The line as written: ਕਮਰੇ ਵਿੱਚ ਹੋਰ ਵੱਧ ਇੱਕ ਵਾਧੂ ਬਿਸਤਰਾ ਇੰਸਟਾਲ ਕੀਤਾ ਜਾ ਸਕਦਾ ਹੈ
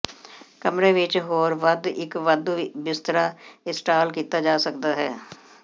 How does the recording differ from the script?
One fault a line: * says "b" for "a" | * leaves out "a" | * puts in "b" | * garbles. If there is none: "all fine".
all fine